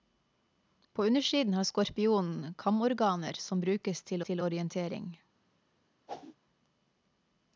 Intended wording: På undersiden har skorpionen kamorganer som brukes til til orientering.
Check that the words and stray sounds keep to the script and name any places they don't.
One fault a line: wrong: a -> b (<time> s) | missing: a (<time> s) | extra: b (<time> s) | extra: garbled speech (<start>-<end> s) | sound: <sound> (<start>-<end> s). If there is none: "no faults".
sound: whoosh (6.1-6.4 s)